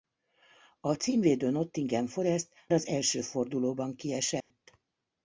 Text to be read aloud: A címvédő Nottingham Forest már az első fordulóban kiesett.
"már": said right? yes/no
no